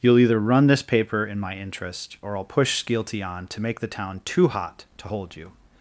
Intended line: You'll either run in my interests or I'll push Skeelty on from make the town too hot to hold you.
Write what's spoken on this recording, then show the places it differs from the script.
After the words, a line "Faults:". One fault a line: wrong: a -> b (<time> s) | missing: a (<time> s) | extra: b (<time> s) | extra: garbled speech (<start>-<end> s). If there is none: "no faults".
You'll either run this paper in my interest or I'll push Skeelty on to make the town too hot to hold you.
Faults:
extra: this paper (0.7 s)
wrong: interests -> interest (1.6 s)
wrong: from -> to (3.5 s)